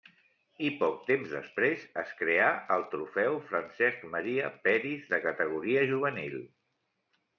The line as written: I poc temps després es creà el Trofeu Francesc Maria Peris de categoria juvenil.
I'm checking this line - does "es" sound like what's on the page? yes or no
yes